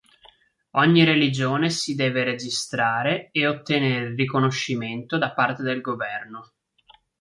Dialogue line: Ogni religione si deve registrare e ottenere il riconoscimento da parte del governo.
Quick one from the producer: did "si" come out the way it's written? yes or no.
yes